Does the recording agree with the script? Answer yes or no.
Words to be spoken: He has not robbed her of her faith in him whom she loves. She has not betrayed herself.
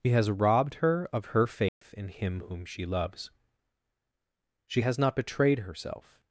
no